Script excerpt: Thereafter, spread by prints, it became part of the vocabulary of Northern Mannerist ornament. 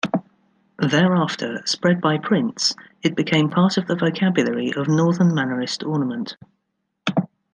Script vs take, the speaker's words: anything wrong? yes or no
no